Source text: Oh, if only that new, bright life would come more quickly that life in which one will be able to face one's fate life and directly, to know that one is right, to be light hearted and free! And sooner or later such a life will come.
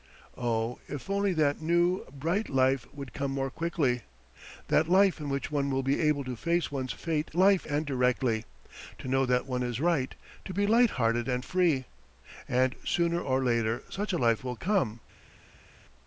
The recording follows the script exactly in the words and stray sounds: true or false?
true